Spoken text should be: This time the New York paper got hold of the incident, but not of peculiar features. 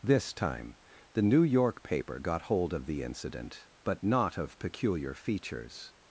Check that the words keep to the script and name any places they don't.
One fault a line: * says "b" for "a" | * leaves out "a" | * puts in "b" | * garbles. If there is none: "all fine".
all fine